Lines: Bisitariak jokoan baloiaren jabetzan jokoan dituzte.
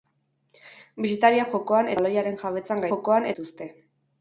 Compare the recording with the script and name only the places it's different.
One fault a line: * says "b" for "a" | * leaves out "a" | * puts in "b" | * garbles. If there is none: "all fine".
all fine